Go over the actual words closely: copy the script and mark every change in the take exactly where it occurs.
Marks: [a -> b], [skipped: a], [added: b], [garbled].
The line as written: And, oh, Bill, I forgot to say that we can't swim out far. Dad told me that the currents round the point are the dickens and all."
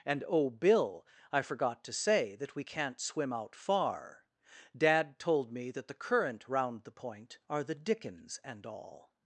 And, oh, Bill, I forgot to say that we can't swim out far. Dad told me that the [currents -> current] round the point are the dickens and all."